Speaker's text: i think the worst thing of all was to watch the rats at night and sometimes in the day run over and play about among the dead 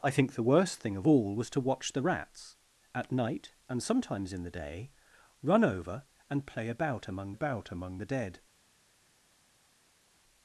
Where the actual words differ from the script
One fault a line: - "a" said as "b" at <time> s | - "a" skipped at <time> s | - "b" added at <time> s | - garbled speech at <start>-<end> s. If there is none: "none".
- "about among" added at 7.3 s